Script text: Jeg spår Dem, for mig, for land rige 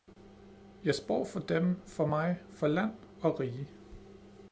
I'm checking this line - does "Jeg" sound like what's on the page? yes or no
yes